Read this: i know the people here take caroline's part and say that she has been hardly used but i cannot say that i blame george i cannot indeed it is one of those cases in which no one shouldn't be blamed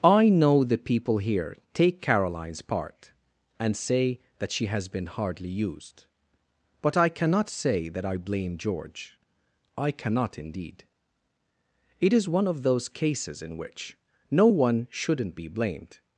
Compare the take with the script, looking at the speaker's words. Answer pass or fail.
pass